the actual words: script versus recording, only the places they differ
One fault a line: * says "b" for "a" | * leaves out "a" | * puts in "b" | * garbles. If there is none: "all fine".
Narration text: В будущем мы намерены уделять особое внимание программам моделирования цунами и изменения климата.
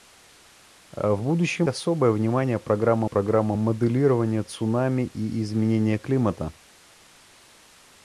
* leaves out "мы намерены уделять"
* puts in "программам"